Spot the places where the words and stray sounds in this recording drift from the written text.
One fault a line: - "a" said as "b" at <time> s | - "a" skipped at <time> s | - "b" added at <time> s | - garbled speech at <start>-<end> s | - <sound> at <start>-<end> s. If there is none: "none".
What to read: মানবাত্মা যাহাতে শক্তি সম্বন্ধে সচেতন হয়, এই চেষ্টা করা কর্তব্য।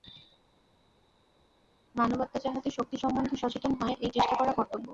none